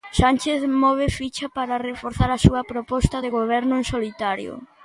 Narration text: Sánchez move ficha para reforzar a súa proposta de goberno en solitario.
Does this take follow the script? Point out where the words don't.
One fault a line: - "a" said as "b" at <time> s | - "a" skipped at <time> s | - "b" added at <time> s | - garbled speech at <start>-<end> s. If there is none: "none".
none